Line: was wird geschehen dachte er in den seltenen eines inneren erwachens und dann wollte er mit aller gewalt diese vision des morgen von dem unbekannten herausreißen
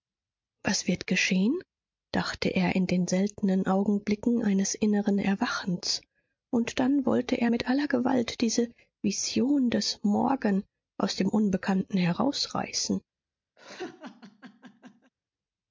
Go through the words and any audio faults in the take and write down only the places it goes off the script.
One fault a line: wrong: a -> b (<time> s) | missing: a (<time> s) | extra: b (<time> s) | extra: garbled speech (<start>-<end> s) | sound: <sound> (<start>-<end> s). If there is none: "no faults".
extra: augenblicken (3.7 s)
wrong: von -> aus (11.0 s)
sound: laugh (13.6-15.1 s)